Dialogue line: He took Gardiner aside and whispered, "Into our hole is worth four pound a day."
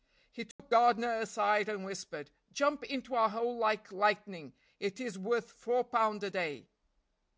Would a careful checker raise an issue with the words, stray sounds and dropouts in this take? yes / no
yes